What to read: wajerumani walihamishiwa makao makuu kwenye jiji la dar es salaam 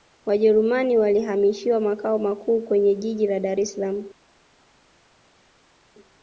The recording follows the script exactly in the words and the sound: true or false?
true